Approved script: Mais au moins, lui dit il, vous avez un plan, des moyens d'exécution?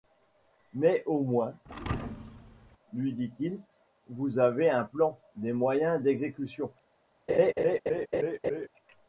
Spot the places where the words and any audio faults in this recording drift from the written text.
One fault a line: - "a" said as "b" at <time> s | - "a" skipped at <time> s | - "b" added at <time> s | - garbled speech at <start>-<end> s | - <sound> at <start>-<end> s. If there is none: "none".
- thud at 1.7-2.8 s
- laugh at 7.3-8.7 s